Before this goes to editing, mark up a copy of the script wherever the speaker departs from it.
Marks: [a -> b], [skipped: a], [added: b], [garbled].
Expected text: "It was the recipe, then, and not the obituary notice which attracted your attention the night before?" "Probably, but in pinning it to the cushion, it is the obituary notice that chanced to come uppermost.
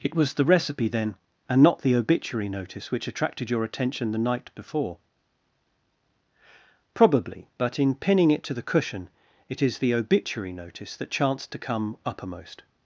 "It was the recipe, then, and not the obituary notice which attracted your attention the night before?" "Probably, but in pinning it to the cushion, it is the obituary notice that chanced to come uppermost.